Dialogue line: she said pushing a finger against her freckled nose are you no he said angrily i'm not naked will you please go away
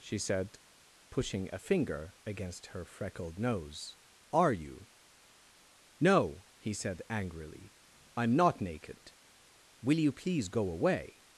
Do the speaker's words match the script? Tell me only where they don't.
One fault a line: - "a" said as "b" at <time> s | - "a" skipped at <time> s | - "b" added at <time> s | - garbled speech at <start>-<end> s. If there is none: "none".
none